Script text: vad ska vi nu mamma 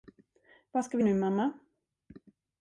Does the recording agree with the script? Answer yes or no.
yes